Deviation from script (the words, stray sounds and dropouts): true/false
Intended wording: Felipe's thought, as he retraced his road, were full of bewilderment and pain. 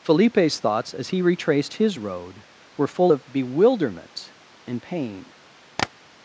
true